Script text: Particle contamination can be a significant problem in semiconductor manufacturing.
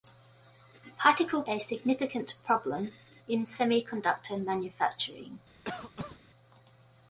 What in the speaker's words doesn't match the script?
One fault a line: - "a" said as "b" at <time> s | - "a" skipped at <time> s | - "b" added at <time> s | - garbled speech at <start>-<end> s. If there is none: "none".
- "contamination can be" skipped at 1.4 s